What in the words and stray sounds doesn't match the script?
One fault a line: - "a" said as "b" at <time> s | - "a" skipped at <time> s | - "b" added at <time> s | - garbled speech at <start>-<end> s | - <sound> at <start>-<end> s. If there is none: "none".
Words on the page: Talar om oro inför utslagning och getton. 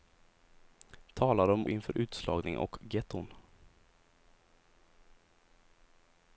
- "oro" skipped at 1.7 s